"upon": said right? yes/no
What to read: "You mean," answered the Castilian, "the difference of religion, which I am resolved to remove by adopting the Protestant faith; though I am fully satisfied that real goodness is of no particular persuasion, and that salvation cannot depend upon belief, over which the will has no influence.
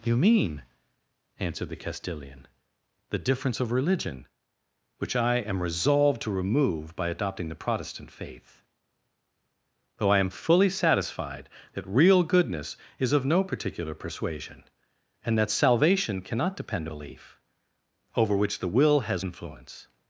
no